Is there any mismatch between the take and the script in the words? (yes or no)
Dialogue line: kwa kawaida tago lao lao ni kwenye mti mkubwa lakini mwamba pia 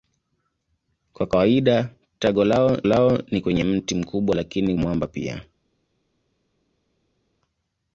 no